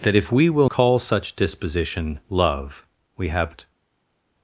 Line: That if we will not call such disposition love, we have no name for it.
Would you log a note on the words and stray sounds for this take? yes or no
yes